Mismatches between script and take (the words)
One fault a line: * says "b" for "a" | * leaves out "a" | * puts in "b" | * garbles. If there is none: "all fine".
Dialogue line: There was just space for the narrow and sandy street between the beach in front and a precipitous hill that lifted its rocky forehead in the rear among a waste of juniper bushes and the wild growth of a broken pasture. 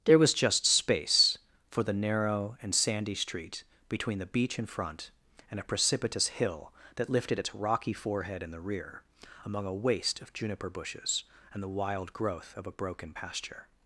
all fine